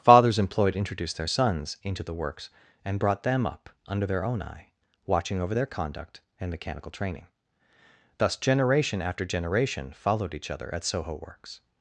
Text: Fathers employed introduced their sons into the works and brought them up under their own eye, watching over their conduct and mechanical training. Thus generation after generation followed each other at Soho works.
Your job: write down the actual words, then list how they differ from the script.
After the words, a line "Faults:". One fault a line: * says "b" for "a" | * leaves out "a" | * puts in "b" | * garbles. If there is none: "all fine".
Fathers employed introduced their sons into the works and brought them up under their own eye, watching over their conduct and mechanical training. Thus generation after generation followed each other at Soho works.
Faults:
all fine